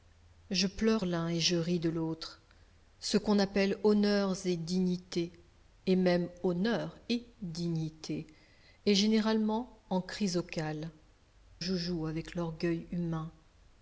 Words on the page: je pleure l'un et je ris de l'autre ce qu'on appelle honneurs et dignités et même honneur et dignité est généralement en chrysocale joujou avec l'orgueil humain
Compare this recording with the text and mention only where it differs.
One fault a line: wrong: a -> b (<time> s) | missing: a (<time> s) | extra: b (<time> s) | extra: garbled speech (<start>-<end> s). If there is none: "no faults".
no faults